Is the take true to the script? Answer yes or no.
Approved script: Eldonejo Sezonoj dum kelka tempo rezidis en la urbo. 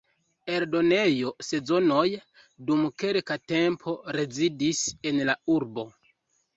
yes